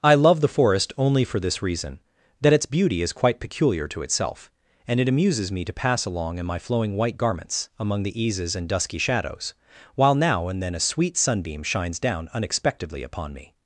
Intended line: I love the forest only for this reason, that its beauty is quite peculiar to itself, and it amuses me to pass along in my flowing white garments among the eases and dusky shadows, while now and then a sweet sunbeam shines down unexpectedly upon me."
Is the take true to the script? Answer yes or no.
yes